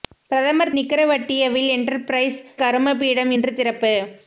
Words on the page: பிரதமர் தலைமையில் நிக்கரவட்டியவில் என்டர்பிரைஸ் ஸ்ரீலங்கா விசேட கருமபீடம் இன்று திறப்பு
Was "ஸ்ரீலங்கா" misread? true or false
true